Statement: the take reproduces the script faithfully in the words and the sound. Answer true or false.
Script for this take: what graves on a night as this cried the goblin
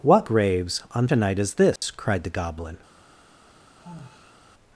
false